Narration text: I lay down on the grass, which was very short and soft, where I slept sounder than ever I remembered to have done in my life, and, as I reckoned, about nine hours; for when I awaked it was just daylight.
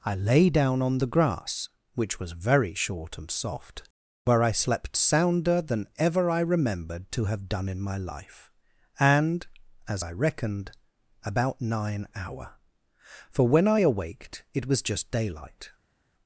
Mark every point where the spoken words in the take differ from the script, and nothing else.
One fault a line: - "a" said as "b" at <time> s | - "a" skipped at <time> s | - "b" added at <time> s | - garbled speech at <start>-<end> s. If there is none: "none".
- "hours" said as "hour" at 12.1 s